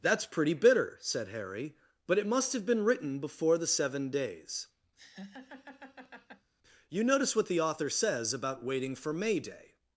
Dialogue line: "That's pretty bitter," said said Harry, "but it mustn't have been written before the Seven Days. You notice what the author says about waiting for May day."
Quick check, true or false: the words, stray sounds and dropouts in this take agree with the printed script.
false